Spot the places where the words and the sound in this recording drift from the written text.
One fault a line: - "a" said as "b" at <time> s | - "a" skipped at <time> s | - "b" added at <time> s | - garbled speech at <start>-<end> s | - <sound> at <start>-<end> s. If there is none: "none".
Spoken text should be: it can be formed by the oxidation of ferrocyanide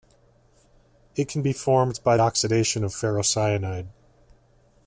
- "the" skipped at 2.2 s